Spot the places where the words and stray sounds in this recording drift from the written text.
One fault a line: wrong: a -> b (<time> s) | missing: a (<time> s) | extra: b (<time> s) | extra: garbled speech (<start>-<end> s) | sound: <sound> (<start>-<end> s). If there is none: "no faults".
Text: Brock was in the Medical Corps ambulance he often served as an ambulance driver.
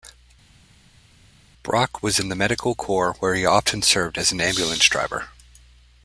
wrong: ambulance -> where (3.2 s)